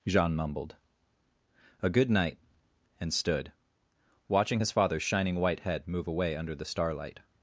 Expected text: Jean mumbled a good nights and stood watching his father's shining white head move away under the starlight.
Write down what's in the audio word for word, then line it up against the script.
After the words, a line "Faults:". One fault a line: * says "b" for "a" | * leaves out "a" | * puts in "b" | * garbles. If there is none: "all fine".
Jean mumbled a good night and stood watching his father's shining white head move away under the starlight.
Faults:
* says "night" for "nights"